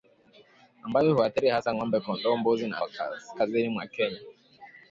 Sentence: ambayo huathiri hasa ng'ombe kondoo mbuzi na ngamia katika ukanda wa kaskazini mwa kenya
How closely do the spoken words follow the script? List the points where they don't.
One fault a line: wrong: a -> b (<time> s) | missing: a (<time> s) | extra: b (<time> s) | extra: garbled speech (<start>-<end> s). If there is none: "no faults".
missing: ngamia katika ukanda (2.8 s)